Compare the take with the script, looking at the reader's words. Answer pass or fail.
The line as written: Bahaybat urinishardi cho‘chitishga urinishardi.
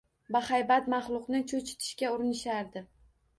fail